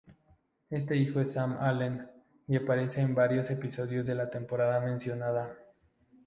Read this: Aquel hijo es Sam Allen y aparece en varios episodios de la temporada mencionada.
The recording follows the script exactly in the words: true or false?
false